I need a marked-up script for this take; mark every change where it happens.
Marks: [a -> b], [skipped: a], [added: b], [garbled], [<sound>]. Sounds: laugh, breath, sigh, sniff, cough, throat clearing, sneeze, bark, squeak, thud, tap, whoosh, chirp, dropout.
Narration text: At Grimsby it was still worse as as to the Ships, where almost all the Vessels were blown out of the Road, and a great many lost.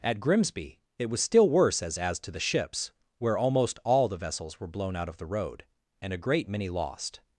At Grimsby it was still worse as as to the Ships, where almost all the Vessels were blown out of the Road, and a great many lost.